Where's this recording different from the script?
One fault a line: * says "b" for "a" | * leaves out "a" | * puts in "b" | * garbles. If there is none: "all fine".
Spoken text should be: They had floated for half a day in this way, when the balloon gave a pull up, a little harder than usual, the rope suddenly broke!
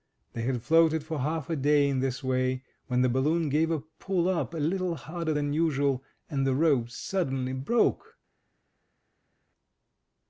* puts in "and"